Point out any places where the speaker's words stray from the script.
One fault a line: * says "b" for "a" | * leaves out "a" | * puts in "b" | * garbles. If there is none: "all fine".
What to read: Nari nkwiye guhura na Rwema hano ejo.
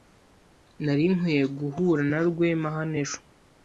all fine